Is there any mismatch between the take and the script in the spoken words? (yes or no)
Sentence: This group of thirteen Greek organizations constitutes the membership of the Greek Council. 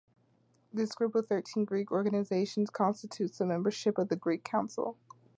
no